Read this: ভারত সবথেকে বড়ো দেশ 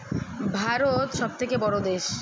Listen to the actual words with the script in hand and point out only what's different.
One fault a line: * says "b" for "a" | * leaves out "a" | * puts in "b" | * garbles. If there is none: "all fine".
all fine